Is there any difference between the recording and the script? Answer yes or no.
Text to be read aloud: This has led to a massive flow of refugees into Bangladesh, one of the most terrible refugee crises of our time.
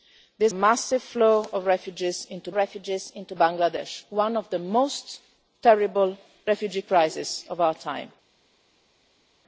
yes